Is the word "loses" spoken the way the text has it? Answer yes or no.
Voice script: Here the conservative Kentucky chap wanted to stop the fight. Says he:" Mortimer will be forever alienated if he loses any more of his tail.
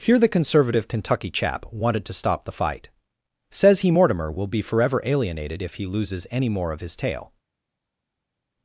yes